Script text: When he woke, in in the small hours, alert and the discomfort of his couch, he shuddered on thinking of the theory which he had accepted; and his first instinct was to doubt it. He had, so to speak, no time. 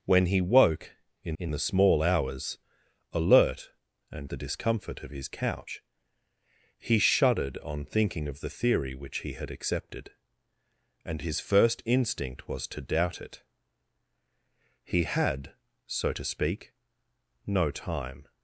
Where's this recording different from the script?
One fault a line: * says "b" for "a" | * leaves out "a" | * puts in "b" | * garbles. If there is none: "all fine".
all fine